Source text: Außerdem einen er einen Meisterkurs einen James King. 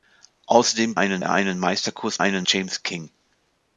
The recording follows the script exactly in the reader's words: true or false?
true